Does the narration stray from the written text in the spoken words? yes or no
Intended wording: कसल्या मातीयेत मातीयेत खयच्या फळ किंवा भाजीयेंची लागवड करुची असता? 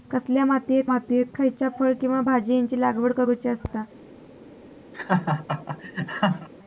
no